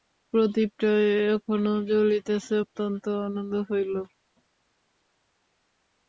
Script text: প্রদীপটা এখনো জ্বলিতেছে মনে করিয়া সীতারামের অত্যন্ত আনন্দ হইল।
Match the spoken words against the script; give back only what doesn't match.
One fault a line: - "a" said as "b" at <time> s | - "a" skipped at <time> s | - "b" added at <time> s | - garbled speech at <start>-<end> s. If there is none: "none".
- "মনে করিয়া সীতারামের" skipped at 2.5 s